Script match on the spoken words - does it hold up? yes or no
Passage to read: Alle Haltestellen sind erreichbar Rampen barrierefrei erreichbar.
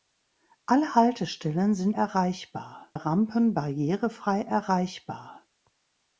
yes